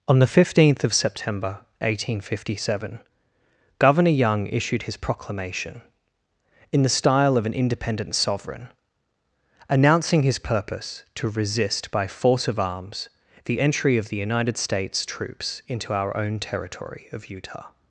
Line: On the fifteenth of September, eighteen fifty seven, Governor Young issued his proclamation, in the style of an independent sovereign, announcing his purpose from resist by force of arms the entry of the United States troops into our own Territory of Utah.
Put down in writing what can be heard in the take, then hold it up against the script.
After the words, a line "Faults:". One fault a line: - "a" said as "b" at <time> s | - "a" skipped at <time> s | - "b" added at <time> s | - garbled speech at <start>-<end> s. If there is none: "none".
On the fifteenth of September, eighteen fifty seven, Governor Young issued his proclamation, in the style of an independent sovereign, announcing his purpose to resist by force of arms the entry of the United States troops into our own Territory of Utah.
Faults:
- "from" said as "to" at 11.1 s